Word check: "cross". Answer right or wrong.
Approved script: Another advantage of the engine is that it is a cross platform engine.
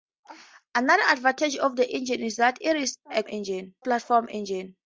wrong